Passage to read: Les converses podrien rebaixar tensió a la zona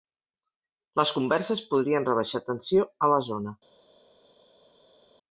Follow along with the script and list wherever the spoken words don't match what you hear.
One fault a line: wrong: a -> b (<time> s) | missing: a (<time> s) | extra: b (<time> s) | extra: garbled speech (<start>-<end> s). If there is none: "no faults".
no faults